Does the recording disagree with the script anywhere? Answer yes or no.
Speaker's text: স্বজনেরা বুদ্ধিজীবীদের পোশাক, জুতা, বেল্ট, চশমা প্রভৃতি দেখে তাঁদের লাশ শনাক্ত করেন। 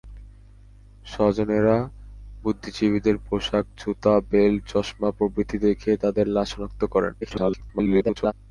yes